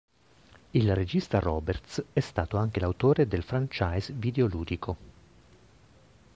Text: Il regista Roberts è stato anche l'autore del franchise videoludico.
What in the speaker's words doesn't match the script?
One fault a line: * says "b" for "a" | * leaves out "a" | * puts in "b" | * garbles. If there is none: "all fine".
all fine